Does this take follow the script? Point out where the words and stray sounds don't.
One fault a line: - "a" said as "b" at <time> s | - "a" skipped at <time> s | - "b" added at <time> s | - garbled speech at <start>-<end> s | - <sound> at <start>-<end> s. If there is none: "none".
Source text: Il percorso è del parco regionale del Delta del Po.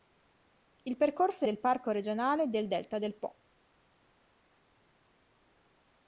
none